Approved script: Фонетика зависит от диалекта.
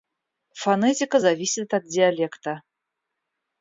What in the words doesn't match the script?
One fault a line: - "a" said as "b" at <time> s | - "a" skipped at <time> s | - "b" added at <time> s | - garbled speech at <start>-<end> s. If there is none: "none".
none